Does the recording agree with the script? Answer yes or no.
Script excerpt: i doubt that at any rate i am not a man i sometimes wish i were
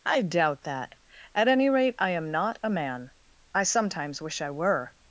yes